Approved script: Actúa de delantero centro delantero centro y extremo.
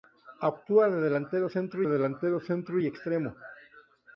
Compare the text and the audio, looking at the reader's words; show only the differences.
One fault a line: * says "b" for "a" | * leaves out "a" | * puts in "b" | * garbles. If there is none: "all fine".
all fine